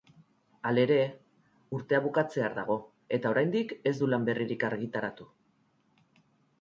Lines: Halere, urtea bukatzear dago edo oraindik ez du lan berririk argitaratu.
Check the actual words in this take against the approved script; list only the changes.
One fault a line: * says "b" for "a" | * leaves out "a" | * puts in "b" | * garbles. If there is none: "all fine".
* says "eta" for "edo"